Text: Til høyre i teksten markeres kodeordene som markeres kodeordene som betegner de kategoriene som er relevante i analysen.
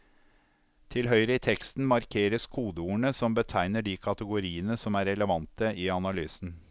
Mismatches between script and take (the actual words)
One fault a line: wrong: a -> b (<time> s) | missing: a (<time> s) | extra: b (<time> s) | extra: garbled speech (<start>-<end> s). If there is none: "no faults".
missing: markeres kodeordene som (3.3 s)